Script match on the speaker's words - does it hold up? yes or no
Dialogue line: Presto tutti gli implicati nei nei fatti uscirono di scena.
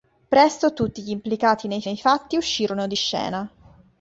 yes